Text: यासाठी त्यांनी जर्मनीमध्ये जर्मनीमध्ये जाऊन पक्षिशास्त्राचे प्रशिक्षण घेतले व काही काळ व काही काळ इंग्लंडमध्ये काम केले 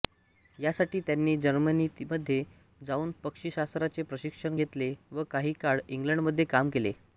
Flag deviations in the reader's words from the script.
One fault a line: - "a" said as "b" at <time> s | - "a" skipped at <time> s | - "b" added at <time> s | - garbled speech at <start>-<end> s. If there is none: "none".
- "जर्मनीमध्ये" skipped at 2.4 s
- "व काही काळ" skipped at 5.8 s